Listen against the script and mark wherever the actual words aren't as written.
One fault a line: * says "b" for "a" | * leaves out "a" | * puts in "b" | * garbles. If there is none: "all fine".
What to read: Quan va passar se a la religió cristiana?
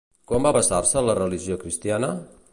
all fine